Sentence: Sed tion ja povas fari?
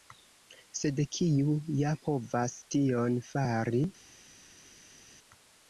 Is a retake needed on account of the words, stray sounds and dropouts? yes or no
yes